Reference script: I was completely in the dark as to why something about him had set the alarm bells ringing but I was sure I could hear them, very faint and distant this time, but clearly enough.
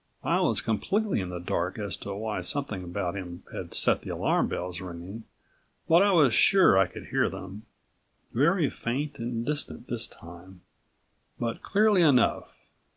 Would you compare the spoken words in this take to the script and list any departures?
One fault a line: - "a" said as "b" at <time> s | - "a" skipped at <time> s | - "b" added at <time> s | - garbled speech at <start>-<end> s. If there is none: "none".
none